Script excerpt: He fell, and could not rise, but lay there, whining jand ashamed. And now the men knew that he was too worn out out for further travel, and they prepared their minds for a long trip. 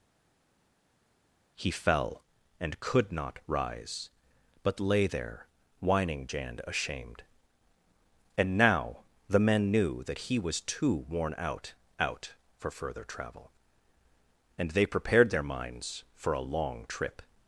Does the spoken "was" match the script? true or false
true